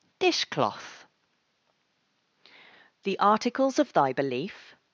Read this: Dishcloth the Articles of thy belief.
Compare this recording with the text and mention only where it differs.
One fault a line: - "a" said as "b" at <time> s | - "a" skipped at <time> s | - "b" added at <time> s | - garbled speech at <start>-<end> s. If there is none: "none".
none